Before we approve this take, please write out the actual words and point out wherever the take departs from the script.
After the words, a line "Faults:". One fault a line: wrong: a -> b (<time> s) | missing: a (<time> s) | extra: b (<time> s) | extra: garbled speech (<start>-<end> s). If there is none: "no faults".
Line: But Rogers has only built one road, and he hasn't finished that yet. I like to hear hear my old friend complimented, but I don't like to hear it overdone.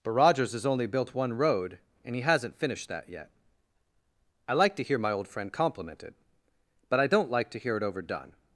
But Rogers has only built one road, and he hasn't finished that yet. I like to hear my old friend complimented, but I don't like to hear it overdone.
Faults:
missing: hear (5.0 s)